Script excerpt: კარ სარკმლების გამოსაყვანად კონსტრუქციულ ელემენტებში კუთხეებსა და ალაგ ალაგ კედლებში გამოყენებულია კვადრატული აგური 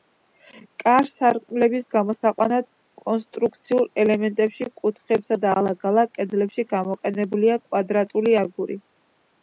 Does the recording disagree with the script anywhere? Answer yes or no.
no